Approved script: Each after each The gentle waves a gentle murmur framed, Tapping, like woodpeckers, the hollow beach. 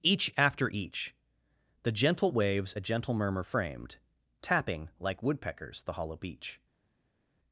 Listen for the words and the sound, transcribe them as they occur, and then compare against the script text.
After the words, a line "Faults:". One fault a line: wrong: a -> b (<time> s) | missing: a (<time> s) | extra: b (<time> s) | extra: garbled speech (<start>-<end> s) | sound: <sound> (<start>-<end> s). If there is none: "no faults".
Each after each The gentle waves a gentle murmur framed, Tapping, like woodpeckers, the hollow beach.
Faults:
no faults